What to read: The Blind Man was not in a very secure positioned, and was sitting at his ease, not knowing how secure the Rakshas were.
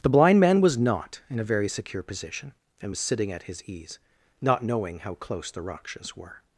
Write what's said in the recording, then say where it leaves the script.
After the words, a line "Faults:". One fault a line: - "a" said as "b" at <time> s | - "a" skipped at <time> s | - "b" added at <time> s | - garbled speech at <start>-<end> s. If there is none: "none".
The Blind Man was not in a very secure position, and was sitting at his ease, not knowing how close the Rakshas were.
Faults:
- "positioned" said as "position" at 2.0 s
- "secure" said as "close" at 5.1 s